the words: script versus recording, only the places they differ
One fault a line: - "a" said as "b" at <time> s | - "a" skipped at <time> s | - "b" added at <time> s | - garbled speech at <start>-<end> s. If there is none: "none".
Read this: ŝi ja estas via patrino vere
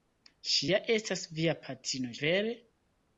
none